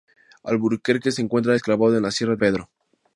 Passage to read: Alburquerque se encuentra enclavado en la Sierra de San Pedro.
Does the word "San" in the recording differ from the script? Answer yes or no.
yes